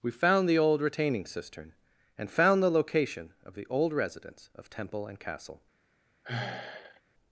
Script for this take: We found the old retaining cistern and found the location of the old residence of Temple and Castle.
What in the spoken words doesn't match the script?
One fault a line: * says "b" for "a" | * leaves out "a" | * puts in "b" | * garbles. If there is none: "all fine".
all fine